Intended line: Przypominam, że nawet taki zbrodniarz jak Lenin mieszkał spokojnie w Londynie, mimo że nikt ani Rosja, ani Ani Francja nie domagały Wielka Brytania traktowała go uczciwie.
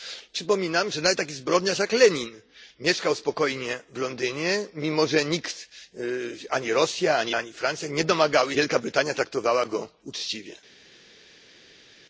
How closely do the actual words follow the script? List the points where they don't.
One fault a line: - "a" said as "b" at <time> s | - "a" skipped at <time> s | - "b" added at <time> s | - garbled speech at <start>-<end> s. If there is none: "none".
none